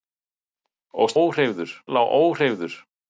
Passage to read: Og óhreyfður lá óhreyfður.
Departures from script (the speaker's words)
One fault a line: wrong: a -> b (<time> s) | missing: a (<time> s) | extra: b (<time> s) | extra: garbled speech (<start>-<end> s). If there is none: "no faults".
no faults